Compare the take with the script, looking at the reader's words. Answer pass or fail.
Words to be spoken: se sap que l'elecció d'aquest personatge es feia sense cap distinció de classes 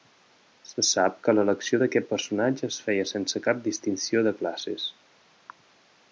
pass